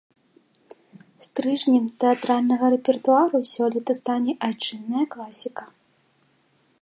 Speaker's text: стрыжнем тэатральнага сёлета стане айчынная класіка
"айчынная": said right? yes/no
yes